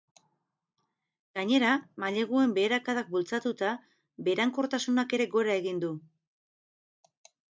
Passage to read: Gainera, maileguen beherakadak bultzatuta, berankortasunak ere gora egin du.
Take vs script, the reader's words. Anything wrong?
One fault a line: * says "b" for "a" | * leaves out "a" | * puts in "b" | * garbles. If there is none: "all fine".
all fine